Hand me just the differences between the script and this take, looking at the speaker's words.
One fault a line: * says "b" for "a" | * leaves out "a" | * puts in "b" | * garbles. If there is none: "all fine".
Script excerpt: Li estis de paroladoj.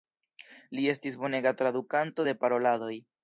* puts in "bonega tradukanto"